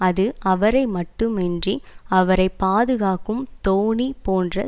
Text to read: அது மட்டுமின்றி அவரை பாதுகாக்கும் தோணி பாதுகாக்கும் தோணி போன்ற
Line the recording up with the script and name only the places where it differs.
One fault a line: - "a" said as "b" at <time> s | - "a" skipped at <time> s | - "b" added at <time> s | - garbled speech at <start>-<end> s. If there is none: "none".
- "அவரை" added at 0.4 s
- "பாதுகாக்கும் தோணி" skipped at 4.1 s